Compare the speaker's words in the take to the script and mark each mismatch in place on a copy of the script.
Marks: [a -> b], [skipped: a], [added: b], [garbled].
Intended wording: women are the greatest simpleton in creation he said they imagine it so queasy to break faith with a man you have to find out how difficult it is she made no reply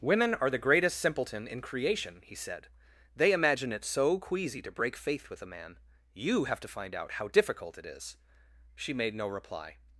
women are the greatest simpleton in creation he said they imagine it so queasy to break faith with a man you have to find out how difficult it is she made no reply